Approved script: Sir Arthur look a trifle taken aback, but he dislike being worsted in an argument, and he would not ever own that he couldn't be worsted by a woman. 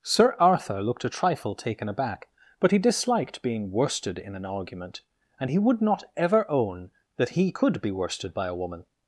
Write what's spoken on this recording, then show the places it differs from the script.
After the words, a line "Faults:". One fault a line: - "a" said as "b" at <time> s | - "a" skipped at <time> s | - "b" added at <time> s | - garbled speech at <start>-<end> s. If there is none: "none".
Sir Arthur looked a trifle taken aback, but he disliked being worsted in an argument, and he would not ever own that he could be worsted by a woman.
Faults:
- "look" said as "looked" at 0.8 s
- "dislike" said as "disliked" at 2.8 s
- "couldn't" said as "could" at 7.5 s